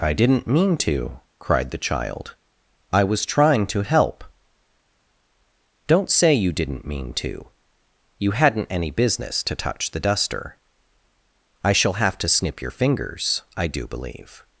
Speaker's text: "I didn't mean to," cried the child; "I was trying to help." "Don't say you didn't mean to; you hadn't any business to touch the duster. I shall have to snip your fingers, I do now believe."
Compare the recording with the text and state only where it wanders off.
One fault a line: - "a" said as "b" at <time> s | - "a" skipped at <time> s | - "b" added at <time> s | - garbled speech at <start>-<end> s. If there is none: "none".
- "now" skipped at 13.8 s